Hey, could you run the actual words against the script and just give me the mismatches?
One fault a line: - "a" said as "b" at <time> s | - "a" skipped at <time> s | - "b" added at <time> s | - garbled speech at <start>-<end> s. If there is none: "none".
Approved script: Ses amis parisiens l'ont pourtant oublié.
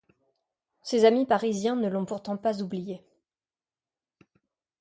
- "ne" added at 1.8 s
- "pas" added at 2.4 s